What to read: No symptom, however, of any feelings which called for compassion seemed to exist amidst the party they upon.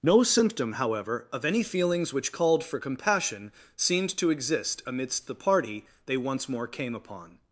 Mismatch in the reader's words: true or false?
true